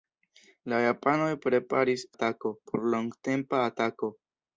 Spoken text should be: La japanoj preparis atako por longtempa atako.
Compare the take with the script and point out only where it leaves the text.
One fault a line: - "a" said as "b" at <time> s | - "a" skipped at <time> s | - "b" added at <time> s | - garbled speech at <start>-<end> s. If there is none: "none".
none